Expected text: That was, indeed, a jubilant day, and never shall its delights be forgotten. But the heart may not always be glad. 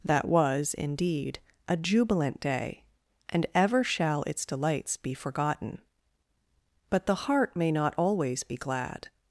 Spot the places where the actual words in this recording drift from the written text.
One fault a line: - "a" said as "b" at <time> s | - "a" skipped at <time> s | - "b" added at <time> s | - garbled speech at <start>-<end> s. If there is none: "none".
- "never" said as "ever" at 3.5 s